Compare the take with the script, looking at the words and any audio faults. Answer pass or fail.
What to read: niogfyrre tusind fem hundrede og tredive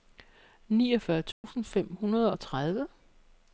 fail